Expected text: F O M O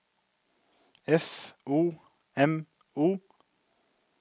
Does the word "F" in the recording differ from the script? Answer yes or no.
no